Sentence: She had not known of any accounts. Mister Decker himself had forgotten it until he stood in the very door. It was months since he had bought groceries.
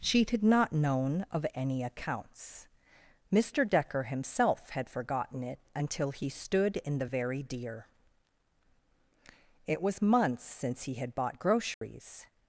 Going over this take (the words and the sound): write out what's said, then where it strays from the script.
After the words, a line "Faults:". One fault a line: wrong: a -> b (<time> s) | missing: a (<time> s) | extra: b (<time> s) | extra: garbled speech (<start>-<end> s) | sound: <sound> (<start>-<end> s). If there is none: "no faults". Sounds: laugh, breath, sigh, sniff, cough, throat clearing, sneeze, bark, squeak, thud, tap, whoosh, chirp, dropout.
She had not known of any accounts. Mister Decker himself had forgotten it until he stood in the very deer. It was months since he had bought groceries.
Faults:
wrong: door -> deer (7.4 s)
sound: dropout (11.7-11.8 s)